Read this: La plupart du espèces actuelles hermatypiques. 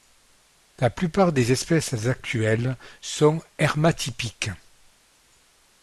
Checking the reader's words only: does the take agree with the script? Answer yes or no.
no